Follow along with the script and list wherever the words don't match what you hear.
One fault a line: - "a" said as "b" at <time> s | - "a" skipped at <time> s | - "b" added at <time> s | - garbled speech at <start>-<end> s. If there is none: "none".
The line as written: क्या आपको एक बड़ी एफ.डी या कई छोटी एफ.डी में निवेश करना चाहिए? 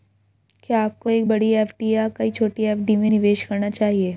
none